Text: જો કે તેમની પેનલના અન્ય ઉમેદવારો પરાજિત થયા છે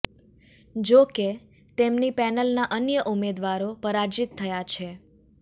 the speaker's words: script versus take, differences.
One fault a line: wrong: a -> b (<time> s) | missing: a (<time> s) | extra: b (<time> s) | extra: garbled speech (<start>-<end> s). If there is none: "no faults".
no faults